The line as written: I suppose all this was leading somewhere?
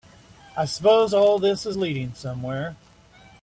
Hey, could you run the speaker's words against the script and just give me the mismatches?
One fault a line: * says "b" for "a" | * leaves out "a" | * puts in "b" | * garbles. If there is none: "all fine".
* says "is" for "was"